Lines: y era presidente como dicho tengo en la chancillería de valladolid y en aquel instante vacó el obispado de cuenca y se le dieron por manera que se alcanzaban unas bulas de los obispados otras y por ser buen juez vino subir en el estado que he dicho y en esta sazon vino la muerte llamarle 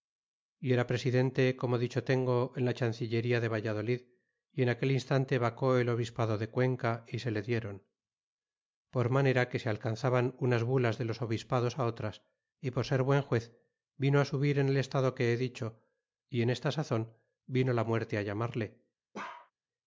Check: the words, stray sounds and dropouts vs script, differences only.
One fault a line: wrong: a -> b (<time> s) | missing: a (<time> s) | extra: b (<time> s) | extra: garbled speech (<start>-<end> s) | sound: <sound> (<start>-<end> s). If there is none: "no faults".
sound: bark (19.1-19.5 s)